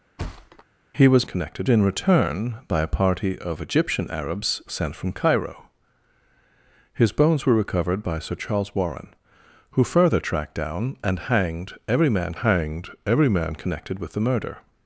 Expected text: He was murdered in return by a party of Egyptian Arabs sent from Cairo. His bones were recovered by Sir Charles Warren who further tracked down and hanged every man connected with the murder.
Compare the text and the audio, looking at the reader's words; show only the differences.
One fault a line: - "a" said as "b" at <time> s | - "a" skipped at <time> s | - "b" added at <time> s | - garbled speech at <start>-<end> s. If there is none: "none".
- "murdered" said as "connected" at 1.2 s
- "hanged every man" added at 12.3 s